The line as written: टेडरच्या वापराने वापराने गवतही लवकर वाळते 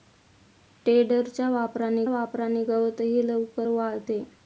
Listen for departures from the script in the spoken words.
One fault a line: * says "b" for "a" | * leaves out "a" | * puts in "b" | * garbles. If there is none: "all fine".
all fine